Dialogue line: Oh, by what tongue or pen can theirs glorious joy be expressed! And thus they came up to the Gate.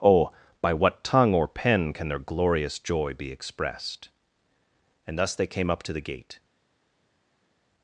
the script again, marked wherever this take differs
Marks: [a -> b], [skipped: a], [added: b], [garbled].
Oh, by what tongue or pen can [theirs -> their] glorious joy be expressed! And thus they came up to the Gate.